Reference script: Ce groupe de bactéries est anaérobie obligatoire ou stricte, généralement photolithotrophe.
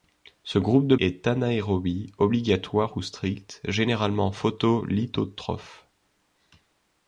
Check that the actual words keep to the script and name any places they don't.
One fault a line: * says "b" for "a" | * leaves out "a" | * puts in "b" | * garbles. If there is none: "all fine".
* leaves out "bactéries"